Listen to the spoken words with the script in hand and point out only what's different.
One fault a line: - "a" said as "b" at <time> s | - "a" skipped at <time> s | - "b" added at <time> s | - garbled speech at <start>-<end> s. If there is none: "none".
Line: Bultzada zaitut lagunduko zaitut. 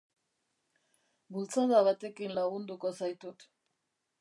- "zaitut" said as "batekin" at 1.9 s